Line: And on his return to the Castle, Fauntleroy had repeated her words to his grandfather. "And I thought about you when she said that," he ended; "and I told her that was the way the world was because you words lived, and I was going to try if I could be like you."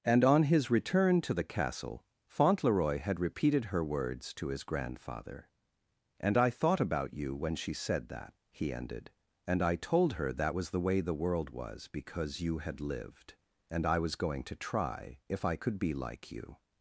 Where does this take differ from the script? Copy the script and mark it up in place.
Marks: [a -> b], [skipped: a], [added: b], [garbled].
And on his return to the Castle, Fauntleroy had repeated her words to his grandfather. "And I thought about you when she said that," he ended; "and I told her that was the way the world was because you [words -> had] lived, and I was going to try if I could be like you."